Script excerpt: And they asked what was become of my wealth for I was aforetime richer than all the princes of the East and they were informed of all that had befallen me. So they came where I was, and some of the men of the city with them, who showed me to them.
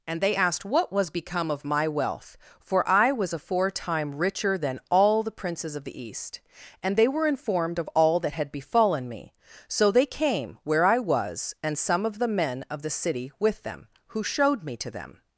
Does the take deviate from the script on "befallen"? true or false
false